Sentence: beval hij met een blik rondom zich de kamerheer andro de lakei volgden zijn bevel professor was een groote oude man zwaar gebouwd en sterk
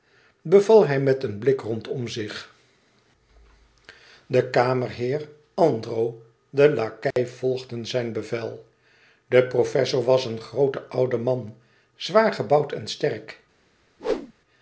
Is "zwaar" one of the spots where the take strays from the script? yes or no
no